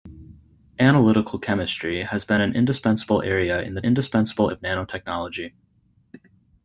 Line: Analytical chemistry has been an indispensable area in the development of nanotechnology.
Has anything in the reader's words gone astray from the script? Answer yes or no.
yes